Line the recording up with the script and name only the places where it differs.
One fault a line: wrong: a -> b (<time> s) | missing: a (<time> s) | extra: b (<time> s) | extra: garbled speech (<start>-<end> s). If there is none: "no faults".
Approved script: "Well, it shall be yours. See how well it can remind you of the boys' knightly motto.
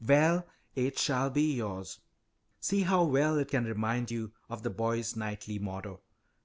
no faults